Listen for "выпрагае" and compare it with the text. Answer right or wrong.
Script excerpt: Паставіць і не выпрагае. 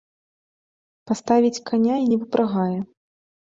right